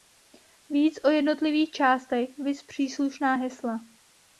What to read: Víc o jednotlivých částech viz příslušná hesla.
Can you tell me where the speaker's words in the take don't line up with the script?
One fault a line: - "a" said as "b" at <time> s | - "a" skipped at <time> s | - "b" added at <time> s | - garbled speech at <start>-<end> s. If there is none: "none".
none